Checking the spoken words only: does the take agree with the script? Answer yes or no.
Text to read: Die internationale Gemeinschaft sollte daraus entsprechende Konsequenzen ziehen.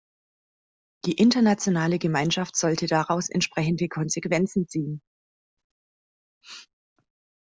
yes